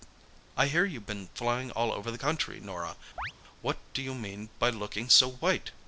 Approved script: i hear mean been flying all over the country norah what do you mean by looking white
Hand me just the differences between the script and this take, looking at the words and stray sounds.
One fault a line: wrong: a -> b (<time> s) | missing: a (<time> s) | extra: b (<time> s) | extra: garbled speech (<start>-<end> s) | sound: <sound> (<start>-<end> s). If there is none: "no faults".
wrong: mean -> you've (0.8 s)
sound: chirp (3.2-3.3 s)
extra: so (5.1 s)